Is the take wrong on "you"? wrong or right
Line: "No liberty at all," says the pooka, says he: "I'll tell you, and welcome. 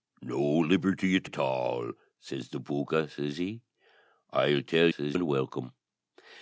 wrong